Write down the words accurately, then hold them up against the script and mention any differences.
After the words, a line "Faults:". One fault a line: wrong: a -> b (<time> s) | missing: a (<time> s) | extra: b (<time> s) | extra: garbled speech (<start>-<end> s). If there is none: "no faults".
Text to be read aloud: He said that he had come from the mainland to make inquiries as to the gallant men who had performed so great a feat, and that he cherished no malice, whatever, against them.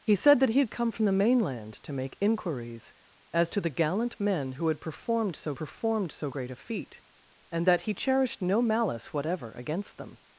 He said that he had come from the mainland to make inquiries as to the gallant men who had performed so performed so great a feat, and that he cherished no malice, whatever, against them.
Faults:
extra: performed so (5.6 s)